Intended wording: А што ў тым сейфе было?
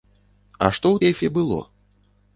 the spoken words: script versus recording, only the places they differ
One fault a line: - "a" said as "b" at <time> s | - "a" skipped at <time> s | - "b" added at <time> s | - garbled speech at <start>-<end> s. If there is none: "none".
- "тым" skipped at 1.0 s